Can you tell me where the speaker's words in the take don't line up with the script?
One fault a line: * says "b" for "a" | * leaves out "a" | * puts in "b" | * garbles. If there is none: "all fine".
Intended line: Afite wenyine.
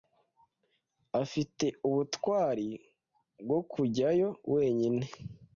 * puts in "ubutwari bwo kujyayo"